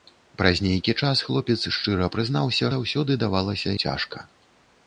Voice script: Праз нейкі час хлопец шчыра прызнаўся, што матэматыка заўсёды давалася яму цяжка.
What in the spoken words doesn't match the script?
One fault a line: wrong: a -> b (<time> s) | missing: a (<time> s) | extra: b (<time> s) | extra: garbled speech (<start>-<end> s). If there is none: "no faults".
missing: што матэматыка (2.7 s)
missing: яму (3.7 s)